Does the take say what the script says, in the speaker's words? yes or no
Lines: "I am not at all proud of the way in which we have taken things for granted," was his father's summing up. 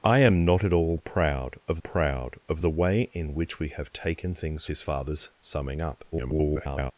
no